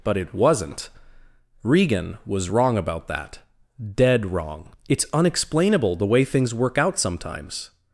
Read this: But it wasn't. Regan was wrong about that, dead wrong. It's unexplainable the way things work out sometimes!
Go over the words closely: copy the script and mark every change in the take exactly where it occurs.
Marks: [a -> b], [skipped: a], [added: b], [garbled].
But it wasn't. Regan was wrong about that, dead wrong. It's unexplainable the way things work out sometimes!